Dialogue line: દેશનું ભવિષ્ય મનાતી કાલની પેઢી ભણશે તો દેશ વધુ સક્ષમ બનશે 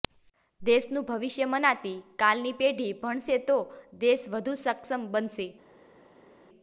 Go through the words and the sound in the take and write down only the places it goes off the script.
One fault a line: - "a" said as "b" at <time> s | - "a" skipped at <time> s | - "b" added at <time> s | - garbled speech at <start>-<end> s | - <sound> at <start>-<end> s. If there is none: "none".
none